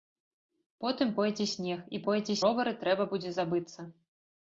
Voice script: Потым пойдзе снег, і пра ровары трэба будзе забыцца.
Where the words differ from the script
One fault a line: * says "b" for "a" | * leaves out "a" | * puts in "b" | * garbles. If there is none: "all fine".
* says "пойдзе" for "пра"